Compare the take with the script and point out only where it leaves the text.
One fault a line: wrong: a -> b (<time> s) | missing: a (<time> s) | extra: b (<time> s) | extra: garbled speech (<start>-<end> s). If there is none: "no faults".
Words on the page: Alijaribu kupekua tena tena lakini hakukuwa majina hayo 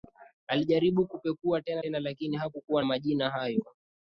no faults